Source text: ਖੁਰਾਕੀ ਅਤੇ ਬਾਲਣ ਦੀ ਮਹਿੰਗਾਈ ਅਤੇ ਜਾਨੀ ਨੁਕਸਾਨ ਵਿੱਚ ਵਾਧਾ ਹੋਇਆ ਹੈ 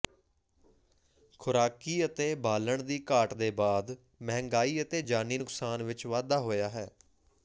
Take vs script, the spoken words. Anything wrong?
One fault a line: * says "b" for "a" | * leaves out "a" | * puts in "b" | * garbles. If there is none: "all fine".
* puts in "ਘਾਟ ਦੇ ਬਾਅਦ"